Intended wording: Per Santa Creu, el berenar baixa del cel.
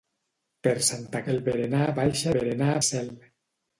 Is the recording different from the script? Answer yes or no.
yes